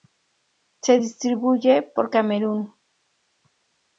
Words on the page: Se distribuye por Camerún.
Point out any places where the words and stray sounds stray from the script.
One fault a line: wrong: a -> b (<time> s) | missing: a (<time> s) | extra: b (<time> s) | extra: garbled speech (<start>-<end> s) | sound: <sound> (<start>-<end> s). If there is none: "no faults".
no faults